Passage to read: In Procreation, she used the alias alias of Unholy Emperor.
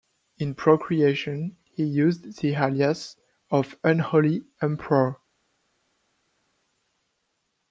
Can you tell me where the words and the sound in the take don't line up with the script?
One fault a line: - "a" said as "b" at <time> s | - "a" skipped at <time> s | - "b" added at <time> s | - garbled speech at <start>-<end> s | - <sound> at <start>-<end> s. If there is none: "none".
- "she" said as "he" at 1.6 s
- "alias" skipped at 3.2 s